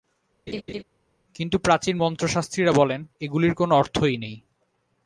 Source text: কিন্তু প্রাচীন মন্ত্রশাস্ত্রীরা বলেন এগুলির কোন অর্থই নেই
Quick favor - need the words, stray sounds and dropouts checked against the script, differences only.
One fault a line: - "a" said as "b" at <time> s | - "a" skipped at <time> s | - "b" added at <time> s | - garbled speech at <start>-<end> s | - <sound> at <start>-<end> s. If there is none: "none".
- laugh at 0.5-0.8 s